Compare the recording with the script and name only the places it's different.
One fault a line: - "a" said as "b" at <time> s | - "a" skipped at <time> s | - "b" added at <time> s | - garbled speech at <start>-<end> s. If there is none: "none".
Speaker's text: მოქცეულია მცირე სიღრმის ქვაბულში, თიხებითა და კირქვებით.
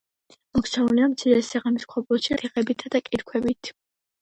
none